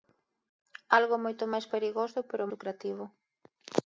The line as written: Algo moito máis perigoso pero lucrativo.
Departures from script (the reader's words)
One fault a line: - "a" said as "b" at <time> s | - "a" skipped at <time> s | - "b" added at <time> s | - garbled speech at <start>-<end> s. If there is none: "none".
none